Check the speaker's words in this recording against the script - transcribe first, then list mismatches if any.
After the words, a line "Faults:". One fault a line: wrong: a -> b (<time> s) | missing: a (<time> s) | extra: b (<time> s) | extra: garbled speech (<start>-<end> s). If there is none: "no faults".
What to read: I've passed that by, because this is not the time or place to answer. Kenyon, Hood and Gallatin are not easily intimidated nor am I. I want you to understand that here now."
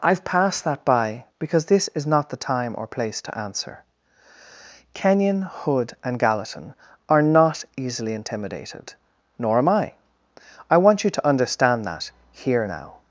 I've passed that by, because this is not the time or place to answer. Kenyon, Hood and Gallatin are not easily intimidated nor am I. I want you to understand that here now."
Faults:
no faults